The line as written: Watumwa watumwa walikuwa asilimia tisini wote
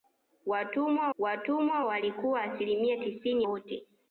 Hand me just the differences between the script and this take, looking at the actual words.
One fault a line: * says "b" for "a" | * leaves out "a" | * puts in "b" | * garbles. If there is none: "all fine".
all fine